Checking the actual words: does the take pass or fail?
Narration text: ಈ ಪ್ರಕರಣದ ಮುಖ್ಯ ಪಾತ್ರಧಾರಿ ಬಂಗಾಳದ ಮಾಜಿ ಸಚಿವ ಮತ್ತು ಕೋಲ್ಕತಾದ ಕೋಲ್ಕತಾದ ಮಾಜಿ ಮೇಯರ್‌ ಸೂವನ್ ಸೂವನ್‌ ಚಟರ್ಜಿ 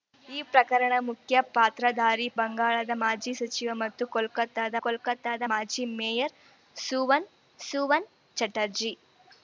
pass